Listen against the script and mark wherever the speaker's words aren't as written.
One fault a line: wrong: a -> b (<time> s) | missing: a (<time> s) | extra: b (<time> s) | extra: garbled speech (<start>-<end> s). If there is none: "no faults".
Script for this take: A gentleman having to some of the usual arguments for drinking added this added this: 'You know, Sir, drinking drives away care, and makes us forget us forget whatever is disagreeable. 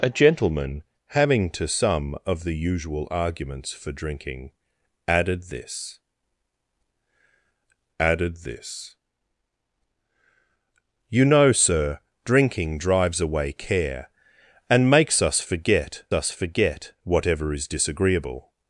no faults